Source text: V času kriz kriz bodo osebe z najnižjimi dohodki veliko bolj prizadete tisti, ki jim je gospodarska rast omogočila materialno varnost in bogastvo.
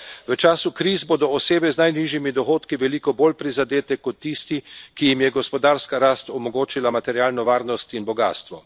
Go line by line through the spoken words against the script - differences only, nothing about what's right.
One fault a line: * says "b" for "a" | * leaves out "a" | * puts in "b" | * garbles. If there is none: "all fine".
* leaves out "kriz"
* puts in "kot"